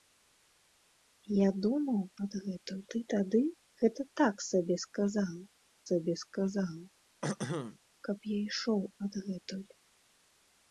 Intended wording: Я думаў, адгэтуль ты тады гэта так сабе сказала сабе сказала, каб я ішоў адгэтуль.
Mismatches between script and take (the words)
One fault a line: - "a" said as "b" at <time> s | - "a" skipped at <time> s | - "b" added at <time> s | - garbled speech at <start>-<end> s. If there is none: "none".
none